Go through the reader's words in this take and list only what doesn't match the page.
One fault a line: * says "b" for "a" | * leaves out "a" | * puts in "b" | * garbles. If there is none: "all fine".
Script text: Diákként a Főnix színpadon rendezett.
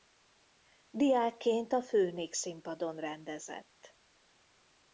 all fine